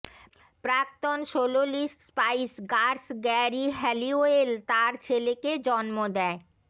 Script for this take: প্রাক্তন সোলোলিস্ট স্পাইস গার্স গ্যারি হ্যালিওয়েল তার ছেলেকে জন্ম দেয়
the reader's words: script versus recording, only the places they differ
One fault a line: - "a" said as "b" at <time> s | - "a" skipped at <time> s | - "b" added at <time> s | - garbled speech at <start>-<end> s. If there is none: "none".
none